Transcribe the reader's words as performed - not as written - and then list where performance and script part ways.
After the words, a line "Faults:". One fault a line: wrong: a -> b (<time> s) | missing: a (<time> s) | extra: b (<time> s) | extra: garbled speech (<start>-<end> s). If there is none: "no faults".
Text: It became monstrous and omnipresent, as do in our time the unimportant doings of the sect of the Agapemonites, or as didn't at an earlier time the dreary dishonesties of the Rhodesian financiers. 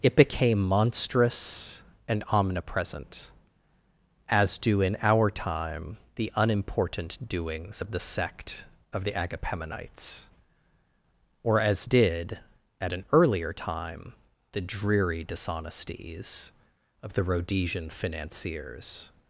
It became monstrous and omnipresent, as do in our time the unimportant doings of the sect of the Agapemonites, or as did at an earlier time the dreary dishonesties of the Rhodesian financiers.
Faults:
wrong: didn't -> did (11.9 s)